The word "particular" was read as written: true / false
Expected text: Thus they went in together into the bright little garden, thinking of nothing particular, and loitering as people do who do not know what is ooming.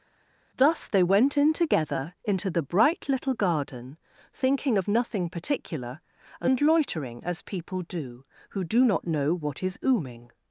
true